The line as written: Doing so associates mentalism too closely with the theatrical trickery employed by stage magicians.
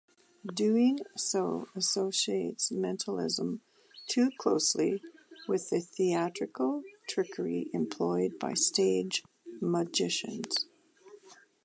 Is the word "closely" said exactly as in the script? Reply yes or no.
yes